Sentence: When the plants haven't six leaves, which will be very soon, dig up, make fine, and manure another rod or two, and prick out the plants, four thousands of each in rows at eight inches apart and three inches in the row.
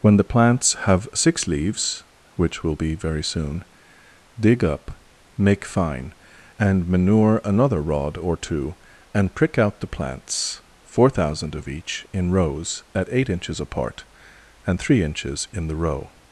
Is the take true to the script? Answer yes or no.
no